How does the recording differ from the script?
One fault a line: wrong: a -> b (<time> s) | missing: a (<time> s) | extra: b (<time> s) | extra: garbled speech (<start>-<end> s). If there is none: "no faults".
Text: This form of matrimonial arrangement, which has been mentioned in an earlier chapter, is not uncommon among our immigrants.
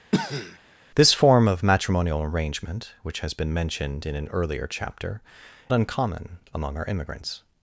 missing: is not (5.2 s)